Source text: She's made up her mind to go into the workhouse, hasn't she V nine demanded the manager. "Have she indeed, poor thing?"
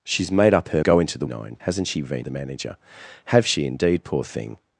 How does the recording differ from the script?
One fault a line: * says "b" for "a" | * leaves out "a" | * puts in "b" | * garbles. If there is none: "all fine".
* leaves out "mind to"
* says "nine" for "workhouse"
* leaves out "nine demanded"